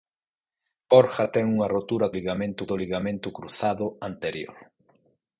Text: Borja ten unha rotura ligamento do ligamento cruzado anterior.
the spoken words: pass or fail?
pass